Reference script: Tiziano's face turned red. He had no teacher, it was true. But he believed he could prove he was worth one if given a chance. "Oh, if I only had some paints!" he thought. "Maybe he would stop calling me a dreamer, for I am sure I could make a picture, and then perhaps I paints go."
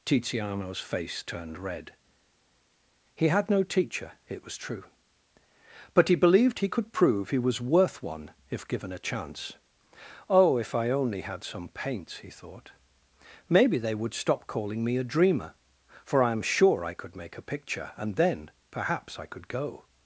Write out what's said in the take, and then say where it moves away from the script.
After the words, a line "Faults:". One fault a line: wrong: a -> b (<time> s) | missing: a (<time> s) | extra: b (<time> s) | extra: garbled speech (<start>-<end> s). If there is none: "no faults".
Tiziano's face turned red. He had no teacher, it was true. But he believed he could prove he was worth one if given a chance. "Oh, if I only had some paints!" he thought. "Maybe they would stop calling me a dreamer, for I am sure I could make a picture, and then perhaps I could go."
Faults:
wrong: he -> they (13.8 s)
wrong: paints -> could (19.3 s)